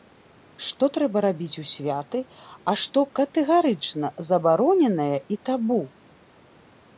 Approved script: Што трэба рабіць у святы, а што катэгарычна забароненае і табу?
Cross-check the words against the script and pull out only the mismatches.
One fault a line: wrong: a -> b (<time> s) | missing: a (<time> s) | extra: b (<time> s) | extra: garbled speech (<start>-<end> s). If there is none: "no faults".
no faults